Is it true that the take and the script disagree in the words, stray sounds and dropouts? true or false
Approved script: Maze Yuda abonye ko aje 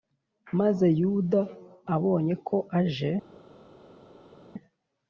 false